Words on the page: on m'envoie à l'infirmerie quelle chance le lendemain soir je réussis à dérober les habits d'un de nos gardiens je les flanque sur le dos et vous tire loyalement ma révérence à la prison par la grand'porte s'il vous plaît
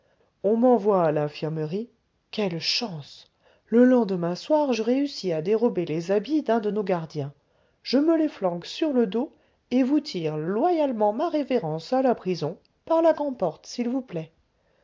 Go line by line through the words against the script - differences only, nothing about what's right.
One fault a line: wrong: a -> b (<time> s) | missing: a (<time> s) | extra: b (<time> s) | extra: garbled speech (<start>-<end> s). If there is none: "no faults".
extra: me (8.0 s)